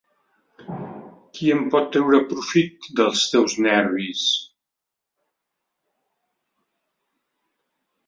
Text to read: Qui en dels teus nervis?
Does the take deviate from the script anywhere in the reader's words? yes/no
yes